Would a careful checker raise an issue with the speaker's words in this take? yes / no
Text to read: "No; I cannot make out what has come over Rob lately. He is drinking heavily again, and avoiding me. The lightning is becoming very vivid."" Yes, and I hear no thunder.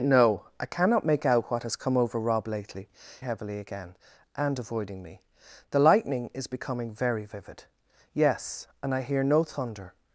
yes